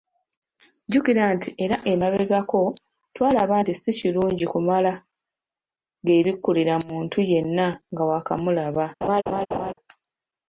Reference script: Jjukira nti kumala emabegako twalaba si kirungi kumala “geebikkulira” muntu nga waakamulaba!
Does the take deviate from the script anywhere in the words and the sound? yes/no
yes